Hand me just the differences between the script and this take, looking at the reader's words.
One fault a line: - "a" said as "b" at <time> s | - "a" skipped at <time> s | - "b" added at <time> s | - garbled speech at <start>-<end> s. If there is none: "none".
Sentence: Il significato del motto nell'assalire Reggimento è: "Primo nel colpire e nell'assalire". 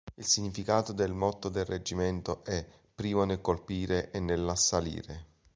- "nell'assalire" said as "del" at 1.5 s